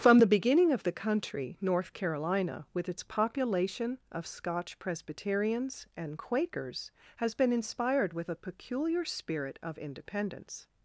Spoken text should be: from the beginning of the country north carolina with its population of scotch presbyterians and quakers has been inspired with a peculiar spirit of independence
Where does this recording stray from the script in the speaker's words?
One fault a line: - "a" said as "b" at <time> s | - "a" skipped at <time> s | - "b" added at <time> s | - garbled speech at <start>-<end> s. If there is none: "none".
none